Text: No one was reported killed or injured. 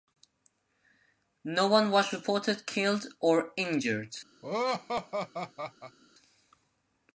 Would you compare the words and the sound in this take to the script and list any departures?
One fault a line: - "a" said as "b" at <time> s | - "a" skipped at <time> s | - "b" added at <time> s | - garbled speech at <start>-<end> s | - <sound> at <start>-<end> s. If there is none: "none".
- laugh at 4.4-6.0 s